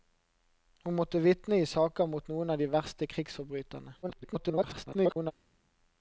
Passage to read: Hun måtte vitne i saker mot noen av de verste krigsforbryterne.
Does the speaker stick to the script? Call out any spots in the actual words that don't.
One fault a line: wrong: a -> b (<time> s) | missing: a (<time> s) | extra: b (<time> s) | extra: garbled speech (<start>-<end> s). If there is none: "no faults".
extra: garbled speech (4.0-5.3 s)